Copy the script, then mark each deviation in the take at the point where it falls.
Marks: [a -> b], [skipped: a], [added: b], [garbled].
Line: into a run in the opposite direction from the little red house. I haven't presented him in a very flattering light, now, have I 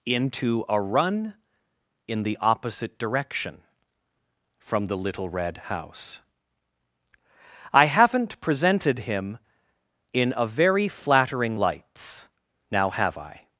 into a run in the opposite direction from the little red house. I haven't presented him in a very flattering [light, -> lights] now, have I